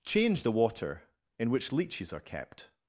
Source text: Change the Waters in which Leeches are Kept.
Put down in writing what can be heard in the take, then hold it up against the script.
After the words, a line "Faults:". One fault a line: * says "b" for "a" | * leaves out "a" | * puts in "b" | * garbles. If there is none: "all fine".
Change the Water in which Leeches are Kept.
Faults:
* says "Water" for "Waters"